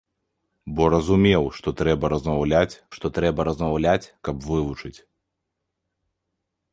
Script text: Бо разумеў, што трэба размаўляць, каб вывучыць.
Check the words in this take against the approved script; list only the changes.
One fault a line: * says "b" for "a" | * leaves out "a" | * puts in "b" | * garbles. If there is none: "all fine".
* puts in "што трэба размаўляць"